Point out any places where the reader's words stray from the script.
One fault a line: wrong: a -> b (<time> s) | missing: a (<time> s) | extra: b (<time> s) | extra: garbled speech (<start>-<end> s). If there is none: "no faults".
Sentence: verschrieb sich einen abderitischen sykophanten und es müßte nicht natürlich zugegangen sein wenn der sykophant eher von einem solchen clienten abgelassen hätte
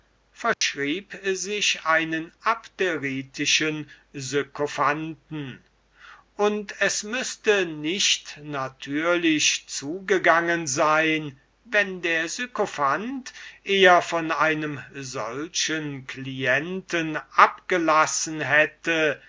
no faults